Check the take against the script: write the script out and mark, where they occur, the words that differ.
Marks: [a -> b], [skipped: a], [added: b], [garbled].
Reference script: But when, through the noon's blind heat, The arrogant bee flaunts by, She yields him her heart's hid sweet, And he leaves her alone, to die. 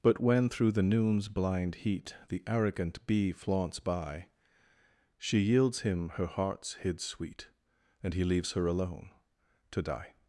But when, through the noon's blind heat, The arrogant bee flaunts by, She yields him her heart's hid sweet, And he leaves her alone, to die.